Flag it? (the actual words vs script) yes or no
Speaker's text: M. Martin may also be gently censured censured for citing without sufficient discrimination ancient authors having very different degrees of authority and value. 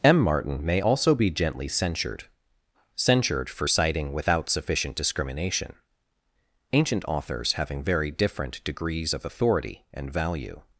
no